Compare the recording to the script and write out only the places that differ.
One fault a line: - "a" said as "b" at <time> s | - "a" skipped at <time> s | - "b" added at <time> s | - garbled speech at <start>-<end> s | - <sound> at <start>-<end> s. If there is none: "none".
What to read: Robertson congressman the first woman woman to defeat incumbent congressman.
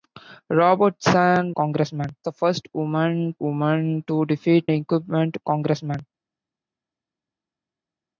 none